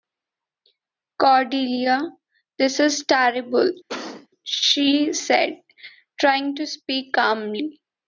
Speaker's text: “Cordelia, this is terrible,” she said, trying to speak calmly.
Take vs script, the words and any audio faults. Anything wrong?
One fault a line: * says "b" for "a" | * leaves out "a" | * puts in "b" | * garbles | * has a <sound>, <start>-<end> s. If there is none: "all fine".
* has a cough, 3.9-4.3 s